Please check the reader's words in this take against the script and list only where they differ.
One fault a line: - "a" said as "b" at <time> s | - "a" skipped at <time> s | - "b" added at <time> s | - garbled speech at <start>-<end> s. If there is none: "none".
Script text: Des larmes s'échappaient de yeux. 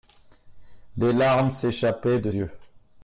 none